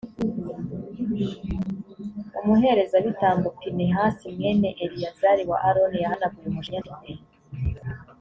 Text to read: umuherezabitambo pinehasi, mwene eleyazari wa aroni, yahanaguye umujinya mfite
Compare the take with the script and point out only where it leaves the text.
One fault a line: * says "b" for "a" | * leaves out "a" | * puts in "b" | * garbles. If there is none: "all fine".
all fine